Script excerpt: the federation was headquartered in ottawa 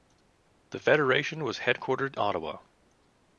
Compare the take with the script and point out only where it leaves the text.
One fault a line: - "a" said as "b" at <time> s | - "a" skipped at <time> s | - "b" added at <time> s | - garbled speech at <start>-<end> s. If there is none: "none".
- "in" skipped at 2.1 s